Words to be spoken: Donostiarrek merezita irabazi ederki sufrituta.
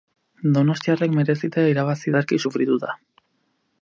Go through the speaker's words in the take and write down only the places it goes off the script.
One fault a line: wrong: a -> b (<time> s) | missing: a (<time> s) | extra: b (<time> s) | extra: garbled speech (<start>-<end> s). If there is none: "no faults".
no faults